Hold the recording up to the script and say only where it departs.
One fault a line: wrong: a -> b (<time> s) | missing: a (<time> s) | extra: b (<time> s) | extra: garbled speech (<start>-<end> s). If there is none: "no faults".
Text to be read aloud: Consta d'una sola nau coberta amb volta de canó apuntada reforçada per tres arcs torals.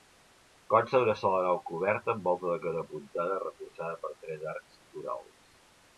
no faults